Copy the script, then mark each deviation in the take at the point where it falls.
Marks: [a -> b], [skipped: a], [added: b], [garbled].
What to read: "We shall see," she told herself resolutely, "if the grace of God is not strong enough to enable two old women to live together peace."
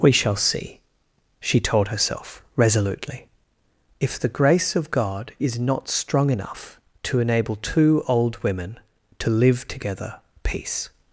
"We shall see," she told herself resolutely, "if the grace of God is not strong enough to enable two old women to live together peace."